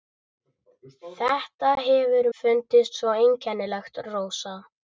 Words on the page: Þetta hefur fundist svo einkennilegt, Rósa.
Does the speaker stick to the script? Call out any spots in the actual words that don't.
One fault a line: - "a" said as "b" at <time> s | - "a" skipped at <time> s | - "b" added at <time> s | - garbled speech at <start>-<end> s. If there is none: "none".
none